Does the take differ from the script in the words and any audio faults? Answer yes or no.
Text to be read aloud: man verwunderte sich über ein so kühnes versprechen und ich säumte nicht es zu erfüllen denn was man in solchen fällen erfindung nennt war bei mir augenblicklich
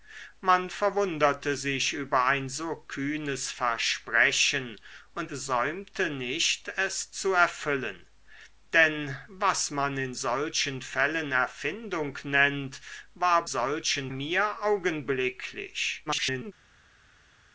yes